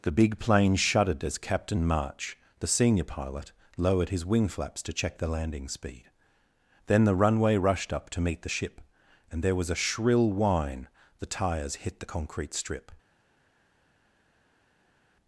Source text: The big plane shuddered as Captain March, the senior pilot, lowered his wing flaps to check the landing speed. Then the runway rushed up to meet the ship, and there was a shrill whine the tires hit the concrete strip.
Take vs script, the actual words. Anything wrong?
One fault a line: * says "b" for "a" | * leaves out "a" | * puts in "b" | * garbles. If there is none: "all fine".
all fine